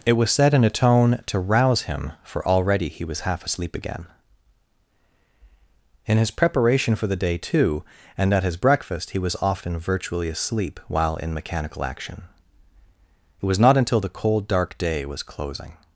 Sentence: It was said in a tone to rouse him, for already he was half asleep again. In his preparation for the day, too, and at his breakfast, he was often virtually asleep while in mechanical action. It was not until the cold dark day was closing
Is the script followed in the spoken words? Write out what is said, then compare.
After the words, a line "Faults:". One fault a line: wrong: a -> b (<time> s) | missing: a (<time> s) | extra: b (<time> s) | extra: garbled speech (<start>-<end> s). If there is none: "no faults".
It was said in a tone to rouse him, for already he was half asleep again. In his preparation for the day, too, and at his breakfast, he was often virtually asleep while in mechanical action. It was not until the cold dark day was closing
Faults:
no faults